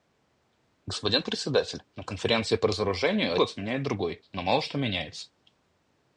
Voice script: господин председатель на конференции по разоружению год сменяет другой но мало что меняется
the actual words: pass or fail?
pass